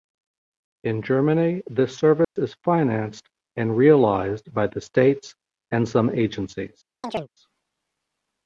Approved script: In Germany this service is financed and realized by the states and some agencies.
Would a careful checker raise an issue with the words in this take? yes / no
no